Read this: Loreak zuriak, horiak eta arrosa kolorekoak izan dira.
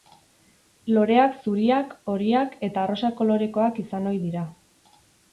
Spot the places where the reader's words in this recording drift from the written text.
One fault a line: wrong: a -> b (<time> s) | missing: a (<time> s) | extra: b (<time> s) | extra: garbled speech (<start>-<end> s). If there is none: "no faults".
extra: ohi (4.1 s)